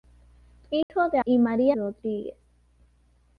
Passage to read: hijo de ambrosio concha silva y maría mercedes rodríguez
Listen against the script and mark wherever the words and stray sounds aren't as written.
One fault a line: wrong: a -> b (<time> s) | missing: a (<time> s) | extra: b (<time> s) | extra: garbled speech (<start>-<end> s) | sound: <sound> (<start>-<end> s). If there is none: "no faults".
sound: dropout (0.8-0.9 s)
missing: ambrosio concha silva (1.2 s)
missing: mercedes (1.8 s)